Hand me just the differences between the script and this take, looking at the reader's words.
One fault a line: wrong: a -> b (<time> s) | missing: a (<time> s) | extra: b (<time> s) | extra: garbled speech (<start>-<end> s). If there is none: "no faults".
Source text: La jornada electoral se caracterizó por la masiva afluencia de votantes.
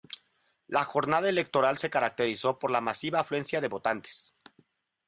no faults